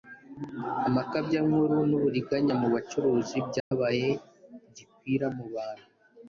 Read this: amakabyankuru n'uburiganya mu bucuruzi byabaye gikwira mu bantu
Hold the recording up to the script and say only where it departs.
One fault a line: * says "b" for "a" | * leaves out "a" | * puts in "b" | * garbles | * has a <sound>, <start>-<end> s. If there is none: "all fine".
* has a dropout, 3.6-3.7 s